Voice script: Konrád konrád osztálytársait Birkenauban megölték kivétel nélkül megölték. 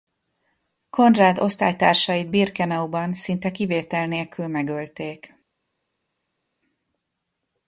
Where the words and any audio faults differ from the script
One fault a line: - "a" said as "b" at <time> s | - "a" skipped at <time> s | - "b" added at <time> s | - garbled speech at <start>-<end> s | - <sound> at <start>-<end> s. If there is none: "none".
- "konrád" skipped at 1.4 s
- "megölték" said as "szinte" at 3.1 s